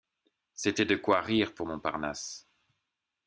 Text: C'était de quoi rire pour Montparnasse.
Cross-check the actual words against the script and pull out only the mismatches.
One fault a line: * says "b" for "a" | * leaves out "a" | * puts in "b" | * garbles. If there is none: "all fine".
all fine